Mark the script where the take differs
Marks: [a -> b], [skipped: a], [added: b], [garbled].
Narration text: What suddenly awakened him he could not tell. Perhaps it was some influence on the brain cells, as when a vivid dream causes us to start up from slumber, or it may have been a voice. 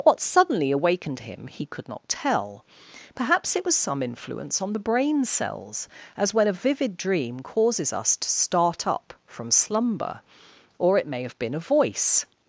What suddenly awakened him he could not tell. Perhaps it was some influence on the brain cells, as when a vivid dream causes us to start up from slumber, or it may have been a voice.